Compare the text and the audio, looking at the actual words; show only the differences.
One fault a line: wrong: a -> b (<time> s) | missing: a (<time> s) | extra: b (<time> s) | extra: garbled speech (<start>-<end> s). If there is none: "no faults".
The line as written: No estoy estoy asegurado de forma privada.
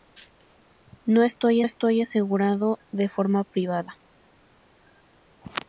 no faults